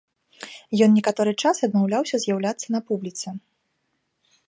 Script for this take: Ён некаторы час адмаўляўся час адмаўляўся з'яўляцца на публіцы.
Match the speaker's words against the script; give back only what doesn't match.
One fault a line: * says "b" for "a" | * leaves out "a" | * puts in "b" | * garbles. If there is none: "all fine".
* leaves out "час адмаўляўся"